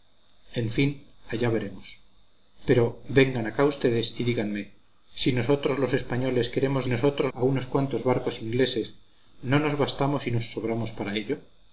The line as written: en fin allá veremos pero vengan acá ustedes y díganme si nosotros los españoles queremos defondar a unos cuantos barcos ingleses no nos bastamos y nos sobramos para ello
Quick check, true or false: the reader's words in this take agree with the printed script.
false